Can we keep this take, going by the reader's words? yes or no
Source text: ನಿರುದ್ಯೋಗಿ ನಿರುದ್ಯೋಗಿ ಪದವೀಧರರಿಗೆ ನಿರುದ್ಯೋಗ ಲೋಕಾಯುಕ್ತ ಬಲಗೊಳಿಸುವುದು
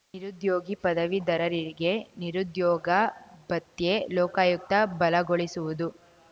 no